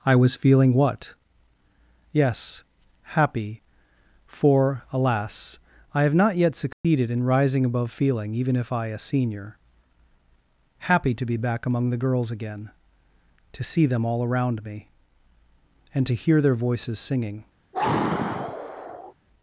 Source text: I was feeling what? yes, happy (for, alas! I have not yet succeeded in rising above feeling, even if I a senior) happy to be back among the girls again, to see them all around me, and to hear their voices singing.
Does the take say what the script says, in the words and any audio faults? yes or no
no